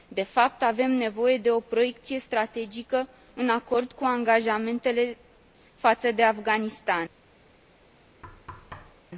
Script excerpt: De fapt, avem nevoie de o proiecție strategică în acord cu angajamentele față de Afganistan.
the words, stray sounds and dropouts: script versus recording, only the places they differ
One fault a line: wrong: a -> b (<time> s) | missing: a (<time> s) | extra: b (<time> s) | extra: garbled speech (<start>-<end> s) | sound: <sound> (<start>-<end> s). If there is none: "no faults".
sound: thud (8.2-9.1 s)